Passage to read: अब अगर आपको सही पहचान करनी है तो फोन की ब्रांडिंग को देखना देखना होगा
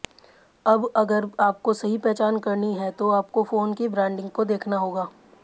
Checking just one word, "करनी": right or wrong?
right